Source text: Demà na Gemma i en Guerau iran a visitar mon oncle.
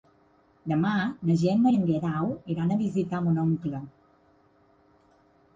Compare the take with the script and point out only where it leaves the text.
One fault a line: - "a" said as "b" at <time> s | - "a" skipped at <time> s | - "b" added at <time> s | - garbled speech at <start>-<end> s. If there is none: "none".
none